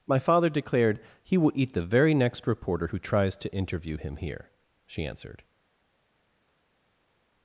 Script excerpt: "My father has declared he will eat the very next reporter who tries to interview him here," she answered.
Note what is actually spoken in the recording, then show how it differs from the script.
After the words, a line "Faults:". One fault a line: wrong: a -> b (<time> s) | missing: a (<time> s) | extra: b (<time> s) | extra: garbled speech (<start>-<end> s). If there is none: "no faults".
"My father declared he will eat the very next reporter who tries to interview him here," she answered.
Faults:
missing: has (0.5 s)